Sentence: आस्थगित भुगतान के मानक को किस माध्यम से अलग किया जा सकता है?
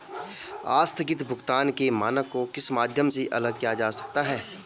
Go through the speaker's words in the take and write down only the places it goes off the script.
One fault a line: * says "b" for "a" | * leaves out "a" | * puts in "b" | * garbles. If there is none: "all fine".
all fine